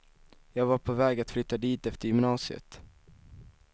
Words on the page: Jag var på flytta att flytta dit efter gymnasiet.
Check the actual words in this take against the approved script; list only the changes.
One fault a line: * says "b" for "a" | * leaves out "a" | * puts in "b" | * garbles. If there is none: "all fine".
* says "väg" for "flytta"